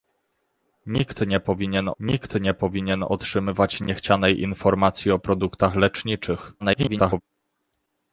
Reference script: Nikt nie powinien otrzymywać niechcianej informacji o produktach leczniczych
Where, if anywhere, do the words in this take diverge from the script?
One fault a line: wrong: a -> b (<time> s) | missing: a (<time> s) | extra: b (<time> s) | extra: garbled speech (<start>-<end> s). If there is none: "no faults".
extra: nikt nie powinien (2.0 s)
extra: garbled speech (6.6-7.2 s)